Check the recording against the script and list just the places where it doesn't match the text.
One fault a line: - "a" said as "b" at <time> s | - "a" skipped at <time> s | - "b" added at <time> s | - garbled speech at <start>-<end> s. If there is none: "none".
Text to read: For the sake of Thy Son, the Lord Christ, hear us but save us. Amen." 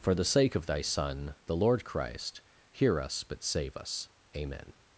none